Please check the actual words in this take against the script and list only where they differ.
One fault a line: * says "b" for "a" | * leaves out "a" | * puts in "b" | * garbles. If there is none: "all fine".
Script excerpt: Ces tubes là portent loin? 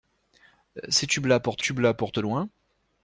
* puts in "tubes là portent"